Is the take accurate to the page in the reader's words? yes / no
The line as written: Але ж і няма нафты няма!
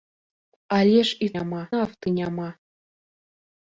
yes